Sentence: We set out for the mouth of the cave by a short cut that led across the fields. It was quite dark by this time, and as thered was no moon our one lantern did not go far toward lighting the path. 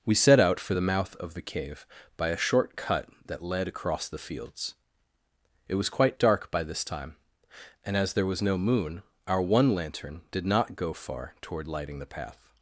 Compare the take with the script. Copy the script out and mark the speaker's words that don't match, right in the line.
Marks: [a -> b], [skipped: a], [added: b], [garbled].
We set out for the mouth of the cave by a short cut that led across the fields. It was quite dark by this time, and as [thered -> there] was no moon our one lantern did not go far toward lighting the path.